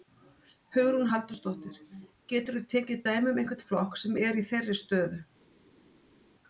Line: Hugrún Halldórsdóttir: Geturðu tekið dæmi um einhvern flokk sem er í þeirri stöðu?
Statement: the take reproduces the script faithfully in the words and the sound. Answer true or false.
true